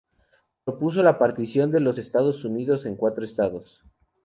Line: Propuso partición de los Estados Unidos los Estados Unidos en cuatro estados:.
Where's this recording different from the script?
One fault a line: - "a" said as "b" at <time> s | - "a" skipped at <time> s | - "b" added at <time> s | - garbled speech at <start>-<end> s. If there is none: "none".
- "la" added at 1.0 s
- "los Estados Unidos" skipped at 2.9 s